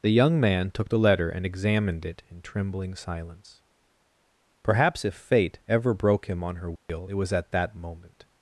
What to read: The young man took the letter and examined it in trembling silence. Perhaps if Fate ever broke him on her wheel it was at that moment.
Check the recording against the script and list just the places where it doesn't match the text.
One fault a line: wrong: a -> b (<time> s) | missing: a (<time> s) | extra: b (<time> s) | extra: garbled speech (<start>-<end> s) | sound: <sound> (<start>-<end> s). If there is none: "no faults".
sound: dropout (6.8-6.9 s)